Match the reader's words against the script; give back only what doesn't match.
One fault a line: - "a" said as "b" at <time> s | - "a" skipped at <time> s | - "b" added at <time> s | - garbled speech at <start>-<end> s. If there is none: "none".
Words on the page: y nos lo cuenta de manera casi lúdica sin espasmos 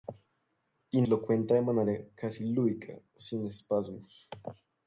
- "nos" skipped at 1.0 s